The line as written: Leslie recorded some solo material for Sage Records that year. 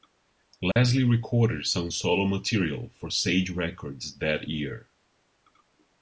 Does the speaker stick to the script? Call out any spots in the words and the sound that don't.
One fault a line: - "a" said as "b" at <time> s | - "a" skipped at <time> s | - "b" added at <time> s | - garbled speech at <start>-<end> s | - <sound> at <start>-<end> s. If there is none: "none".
- dropout at 0.7-0.8 s